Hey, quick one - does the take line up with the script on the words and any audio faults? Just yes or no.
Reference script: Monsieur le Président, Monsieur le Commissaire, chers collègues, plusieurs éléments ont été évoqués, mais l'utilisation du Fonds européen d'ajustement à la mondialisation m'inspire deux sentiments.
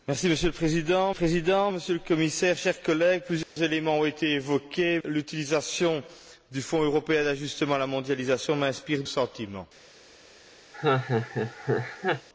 no